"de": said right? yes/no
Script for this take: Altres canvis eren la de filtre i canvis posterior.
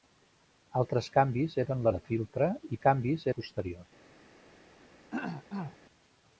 yes